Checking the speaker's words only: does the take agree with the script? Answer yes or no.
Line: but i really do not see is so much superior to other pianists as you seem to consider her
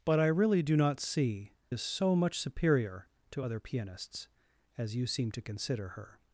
yes